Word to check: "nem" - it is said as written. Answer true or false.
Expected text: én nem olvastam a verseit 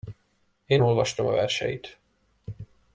false